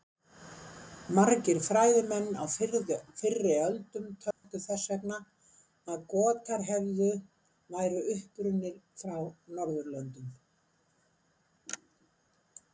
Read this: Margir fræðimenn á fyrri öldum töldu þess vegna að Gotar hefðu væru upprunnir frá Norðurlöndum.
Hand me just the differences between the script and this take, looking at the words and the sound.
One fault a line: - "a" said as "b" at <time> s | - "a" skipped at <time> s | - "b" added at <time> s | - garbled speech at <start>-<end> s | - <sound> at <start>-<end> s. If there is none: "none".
- dropout at 4.3-4.4 s